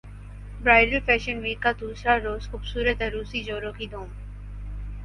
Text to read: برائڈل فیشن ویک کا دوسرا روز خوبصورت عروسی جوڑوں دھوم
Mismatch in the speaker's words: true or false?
true